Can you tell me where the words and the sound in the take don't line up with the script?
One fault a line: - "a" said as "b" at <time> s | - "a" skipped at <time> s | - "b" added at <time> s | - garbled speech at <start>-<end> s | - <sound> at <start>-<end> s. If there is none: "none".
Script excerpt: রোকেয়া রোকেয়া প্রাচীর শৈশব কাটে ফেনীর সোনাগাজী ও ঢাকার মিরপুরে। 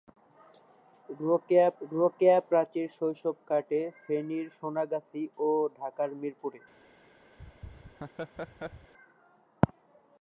- laugh at 7.4-8.9 s